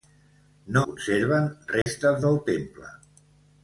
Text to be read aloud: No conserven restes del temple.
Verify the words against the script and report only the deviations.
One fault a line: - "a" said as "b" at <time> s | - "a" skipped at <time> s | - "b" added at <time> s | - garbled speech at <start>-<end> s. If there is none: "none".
none